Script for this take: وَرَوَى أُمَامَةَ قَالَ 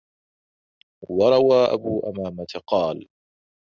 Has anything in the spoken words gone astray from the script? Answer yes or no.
yes